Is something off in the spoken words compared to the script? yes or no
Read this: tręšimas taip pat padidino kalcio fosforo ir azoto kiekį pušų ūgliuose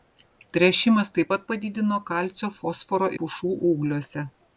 yes